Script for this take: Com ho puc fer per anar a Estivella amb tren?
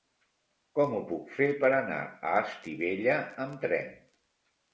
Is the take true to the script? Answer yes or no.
yes